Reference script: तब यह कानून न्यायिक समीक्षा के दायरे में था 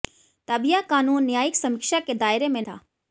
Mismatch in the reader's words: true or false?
false